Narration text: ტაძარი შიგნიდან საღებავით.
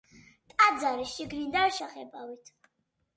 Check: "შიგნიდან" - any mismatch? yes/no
no